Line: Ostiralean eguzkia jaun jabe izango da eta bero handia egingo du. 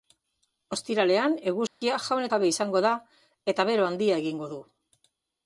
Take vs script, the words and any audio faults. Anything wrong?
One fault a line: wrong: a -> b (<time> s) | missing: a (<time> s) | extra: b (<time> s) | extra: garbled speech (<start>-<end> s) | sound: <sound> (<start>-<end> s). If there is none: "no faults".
sound: dropout (1.7-1.8 s)